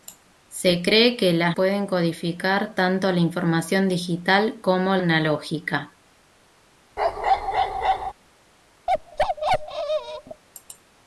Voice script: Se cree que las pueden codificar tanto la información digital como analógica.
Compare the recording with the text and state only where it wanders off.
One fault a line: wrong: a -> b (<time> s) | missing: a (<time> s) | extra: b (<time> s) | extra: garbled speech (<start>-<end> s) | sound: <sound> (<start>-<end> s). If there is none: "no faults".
sound: bark (7.0-8.1 s)
sound: bark (8.9-10.4 s)